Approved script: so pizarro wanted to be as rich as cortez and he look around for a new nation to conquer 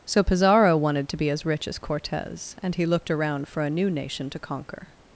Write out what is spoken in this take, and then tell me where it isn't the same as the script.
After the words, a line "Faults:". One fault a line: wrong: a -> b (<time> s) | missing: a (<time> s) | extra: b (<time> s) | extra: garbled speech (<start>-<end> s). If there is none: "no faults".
so pizarro wanted to be as rich as cortez and he looked around for a new nation to conquer
Faults:
wrong: look -> looked (2.9 s)